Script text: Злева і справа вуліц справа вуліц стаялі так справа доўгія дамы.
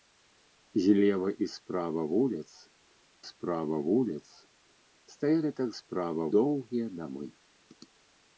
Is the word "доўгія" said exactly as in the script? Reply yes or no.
yes